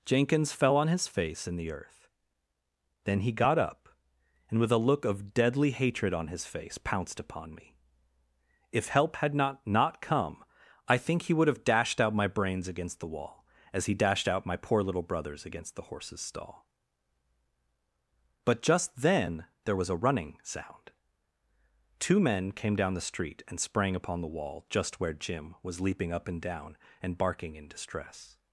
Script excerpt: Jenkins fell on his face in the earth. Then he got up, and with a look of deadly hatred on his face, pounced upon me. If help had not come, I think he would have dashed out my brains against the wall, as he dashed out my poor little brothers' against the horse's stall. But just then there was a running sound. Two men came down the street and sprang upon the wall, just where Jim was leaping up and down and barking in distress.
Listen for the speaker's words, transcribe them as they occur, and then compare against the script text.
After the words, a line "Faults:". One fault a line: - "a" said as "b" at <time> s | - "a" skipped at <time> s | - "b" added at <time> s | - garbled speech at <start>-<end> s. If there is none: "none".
Jenkins fell on his face in the earth. Then he got up, and with a look of deadly hatred on his face, pounced upon me. If help had not not come, I think he would have dashed out my brains against the wall, as he dashed out my poor little brothers' against the horse's stall. But just then there was a running sound. Two men came down the street and sprang upon the wall, just where Jim was leaping up and down and barking in distress.
Faults:
- "not" added at 9.7 s